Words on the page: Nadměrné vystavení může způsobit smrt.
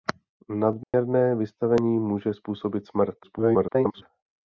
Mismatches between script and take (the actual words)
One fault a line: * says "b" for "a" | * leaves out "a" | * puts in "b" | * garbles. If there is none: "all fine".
* garbles